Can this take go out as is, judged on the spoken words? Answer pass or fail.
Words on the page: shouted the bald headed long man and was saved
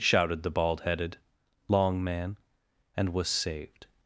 pass